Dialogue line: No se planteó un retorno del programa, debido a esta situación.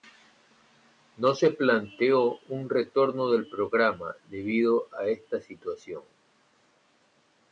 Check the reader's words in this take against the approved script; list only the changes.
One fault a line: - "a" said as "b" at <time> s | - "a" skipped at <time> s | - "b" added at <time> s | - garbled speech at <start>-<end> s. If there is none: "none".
none